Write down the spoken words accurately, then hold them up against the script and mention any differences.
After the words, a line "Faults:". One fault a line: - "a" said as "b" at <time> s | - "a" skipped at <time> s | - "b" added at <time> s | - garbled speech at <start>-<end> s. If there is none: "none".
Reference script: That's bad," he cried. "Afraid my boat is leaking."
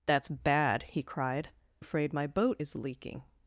That's bad," he cried. "Afraid my boat is leaking."
Faults:
none